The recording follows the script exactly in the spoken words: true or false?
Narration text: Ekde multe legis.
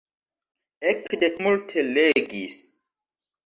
true